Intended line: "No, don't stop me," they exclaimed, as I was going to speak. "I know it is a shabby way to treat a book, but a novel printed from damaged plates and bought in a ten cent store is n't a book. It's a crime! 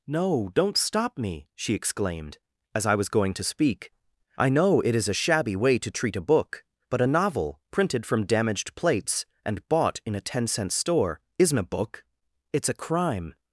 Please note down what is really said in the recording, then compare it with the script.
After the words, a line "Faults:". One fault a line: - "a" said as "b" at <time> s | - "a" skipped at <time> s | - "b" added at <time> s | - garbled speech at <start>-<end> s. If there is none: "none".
"No, don't stop me," she exclaimed, as I was going to speak. "I know it is a shabby way to treat a book, but a novel printed from damaged plates and bought in a ten cent store is n't a book. It's a crime!
Faults:
- "they" said as "she" at 1.6 s